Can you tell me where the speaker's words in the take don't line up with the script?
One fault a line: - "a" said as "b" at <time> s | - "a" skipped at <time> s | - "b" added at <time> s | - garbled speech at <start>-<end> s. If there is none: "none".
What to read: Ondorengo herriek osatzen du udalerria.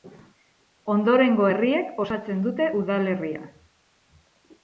- "du" said as "dute" at 2.5 s